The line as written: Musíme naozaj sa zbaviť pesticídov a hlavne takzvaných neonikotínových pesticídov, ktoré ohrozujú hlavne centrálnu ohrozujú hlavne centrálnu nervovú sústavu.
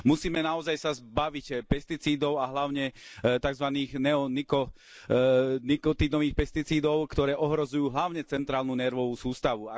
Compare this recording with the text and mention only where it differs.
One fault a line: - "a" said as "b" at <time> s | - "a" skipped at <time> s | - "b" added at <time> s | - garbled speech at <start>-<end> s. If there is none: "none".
- "ohrozujú hlavne centrálnu" skipped at 8.7 s